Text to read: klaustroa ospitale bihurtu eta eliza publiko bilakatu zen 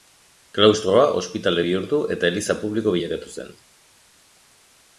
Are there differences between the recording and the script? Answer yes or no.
no